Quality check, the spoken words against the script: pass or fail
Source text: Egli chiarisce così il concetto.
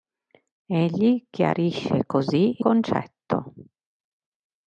fail